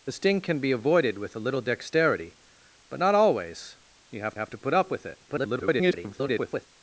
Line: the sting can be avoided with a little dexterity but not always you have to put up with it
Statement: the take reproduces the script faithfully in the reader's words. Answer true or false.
false